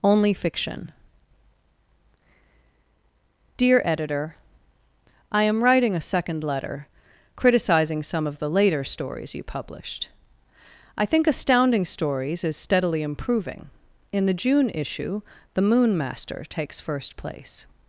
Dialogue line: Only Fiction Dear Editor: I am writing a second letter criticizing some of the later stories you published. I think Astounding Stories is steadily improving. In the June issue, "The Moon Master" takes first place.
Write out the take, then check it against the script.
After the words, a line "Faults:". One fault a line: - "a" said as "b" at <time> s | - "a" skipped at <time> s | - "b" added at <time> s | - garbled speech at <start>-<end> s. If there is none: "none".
Only Fiction Dear Editor: I am writing a second letter criticizing some of the later stories you published. I think Astounding Stories is steadily improving. In the June issue, "The Moon Master" takes first place.
Faults:
none